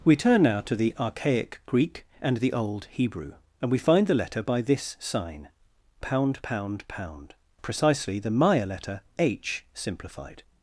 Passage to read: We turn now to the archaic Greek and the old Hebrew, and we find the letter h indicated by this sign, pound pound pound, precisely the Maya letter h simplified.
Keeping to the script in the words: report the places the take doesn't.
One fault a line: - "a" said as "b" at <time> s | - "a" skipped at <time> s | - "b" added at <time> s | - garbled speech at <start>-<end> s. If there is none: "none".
- "h indicated" skipped at 4.4 s